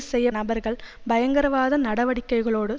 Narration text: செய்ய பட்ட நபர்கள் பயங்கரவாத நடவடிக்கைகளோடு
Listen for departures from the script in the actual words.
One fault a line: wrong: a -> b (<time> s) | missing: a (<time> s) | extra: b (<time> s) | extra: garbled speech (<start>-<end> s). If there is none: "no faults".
missing: பட்ட (0.3 s)